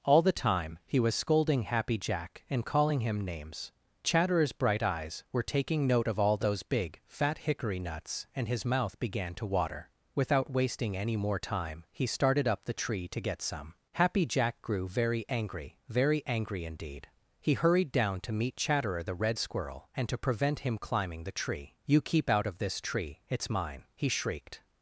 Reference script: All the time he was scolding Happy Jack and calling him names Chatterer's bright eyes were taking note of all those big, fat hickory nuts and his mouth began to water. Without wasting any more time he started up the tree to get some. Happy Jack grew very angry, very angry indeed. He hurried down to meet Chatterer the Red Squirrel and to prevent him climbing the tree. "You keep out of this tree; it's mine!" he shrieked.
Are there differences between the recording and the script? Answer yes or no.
no